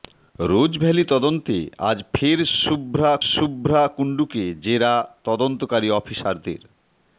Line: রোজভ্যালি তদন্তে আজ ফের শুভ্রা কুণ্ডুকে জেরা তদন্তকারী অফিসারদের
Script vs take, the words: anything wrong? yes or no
yes